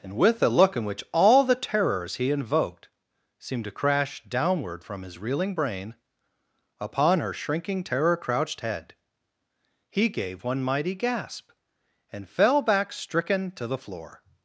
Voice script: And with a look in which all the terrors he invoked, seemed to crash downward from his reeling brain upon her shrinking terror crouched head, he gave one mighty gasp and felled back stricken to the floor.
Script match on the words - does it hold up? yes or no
no